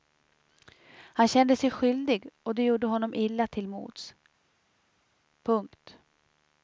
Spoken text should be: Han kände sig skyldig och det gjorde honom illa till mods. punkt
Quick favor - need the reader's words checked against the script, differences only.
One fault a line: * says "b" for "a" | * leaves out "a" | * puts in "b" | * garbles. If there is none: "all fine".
all fine